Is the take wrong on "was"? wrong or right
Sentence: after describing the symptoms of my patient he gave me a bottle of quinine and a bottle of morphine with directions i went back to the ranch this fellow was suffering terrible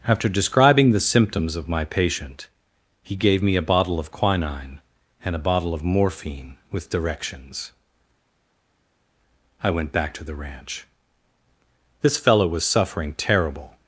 right